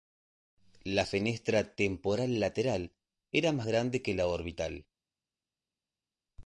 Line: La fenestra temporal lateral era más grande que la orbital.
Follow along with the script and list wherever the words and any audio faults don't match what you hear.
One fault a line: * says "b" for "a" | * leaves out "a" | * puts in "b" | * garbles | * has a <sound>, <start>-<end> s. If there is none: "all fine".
all fine